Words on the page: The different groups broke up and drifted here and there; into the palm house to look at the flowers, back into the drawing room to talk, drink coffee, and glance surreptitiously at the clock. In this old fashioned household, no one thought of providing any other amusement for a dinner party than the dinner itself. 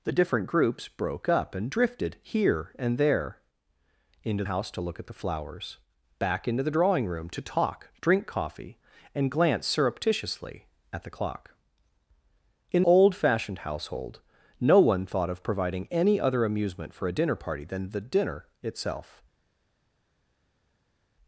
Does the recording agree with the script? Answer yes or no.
no